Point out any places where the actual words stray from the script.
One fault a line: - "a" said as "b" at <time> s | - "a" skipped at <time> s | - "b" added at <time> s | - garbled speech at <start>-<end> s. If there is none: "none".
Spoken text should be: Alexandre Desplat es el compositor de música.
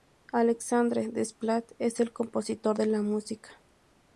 - "la" added at 2.8 s